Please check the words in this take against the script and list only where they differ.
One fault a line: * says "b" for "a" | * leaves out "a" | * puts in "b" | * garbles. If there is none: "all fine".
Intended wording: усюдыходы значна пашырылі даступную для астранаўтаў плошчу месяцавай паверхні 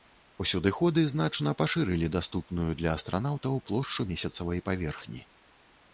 all fine